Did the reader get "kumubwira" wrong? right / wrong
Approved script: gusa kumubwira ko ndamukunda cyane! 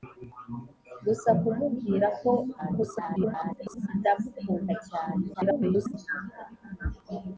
right